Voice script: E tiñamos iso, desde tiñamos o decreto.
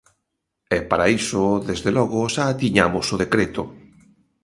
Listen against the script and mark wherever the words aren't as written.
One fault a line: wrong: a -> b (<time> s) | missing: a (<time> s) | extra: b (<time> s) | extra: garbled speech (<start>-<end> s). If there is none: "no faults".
wrong: tiñamos -> para (0.9 s)
extra: logo xa (2.0 s)